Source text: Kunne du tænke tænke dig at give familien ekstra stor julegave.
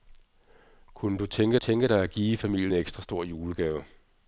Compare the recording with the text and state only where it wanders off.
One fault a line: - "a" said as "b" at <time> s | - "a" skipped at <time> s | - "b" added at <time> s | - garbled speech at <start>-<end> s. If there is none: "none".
none